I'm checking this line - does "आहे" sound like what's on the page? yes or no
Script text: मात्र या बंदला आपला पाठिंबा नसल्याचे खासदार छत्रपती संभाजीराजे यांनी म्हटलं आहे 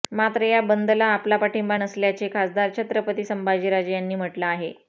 yes